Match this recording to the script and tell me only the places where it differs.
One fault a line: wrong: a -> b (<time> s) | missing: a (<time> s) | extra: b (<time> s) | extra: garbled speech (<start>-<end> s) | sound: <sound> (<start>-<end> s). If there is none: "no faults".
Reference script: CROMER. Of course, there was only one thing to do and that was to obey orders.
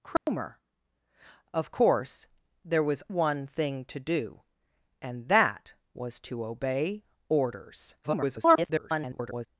sound: dropout (0.2-0.3 s)
missing: only (3.0 s)
extra: garbled speech (8.0-9.5 s)